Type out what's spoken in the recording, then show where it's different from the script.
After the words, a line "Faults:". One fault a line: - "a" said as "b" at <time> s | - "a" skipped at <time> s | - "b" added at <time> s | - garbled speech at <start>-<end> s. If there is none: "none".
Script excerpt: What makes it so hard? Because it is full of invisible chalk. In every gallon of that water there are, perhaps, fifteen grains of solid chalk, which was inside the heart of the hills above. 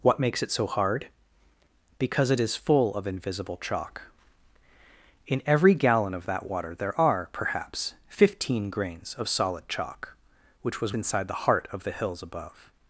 What makes it so hard? Because it is full of invisible chalk. In every gallon of that water there are, perhaps, fifteen grains of solid chalk, which was inside the heart of the hills above.
Faults:
none